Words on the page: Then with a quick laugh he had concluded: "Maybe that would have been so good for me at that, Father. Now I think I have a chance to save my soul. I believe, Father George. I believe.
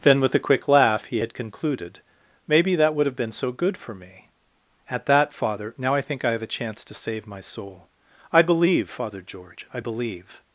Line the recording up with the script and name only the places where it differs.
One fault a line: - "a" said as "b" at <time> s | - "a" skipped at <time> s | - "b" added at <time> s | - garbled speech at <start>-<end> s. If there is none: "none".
none